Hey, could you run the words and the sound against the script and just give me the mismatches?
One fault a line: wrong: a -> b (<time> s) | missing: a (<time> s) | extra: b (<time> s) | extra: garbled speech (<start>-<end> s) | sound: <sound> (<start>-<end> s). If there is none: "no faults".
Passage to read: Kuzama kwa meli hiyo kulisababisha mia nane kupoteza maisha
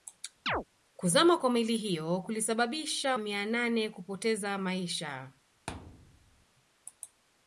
sound: chirp (0.5-0.6 s)
sound: thud (5.7-6.5 s)